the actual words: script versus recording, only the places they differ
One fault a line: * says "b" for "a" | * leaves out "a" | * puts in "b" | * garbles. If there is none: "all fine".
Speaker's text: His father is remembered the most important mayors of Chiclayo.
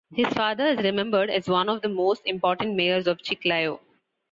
* puts in "as one of"